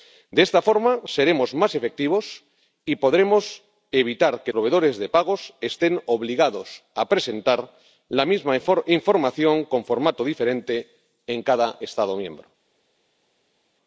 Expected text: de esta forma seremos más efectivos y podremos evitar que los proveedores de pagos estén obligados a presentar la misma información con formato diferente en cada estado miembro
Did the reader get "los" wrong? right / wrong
wrong